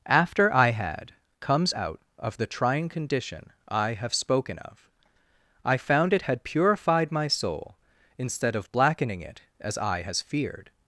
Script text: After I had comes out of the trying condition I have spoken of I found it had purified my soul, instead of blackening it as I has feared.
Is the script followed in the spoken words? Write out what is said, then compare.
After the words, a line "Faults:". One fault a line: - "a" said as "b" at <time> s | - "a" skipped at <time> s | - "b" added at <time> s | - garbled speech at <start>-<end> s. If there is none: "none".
After I had comes out of the trying condition I have spoken of I found it had purified my soul, instead of blackening it as I has feared.
Faults:
none